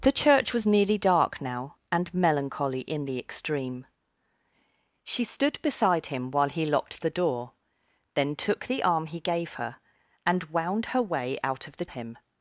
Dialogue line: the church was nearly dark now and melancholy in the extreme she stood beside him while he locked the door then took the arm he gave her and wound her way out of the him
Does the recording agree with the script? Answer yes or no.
yes